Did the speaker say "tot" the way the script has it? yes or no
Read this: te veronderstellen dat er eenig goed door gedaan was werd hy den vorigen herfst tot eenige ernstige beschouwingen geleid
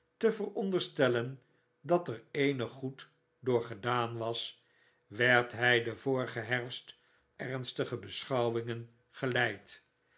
no